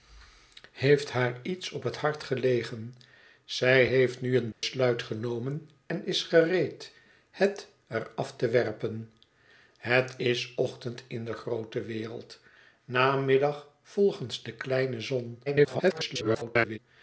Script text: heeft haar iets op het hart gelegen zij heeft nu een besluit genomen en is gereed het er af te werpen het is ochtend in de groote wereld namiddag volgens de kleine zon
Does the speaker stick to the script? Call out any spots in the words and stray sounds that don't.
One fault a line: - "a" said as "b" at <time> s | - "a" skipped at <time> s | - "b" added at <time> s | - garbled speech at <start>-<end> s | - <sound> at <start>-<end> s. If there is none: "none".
- dropout at 4.5-4.6 s
- garbled speech at 15.5-16.8 s